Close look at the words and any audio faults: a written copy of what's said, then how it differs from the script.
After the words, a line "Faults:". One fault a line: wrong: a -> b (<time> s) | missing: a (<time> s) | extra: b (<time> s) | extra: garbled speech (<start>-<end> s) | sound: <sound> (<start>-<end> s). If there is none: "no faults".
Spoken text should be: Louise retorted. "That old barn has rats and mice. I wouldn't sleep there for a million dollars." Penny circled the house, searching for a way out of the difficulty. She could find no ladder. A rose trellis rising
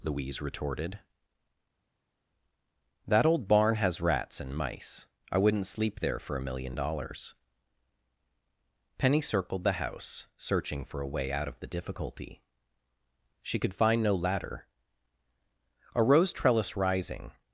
Louise retorted. "That old barn has rats and mice. I wouldn't sleep there for a million dollars." Penny circled the house, searching for a way out of the difficulty. She could find no ladder. A rose trellis rising
Faults:
no faults